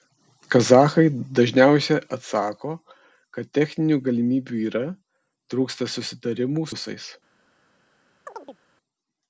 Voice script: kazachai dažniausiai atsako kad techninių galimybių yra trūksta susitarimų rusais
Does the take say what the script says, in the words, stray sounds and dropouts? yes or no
no